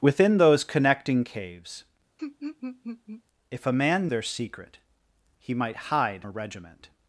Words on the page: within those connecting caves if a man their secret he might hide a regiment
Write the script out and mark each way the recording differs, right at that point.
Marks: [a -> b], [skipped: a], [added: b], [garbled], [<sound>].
within those connecting caves [laugh] if a man their secret he might hide a regiment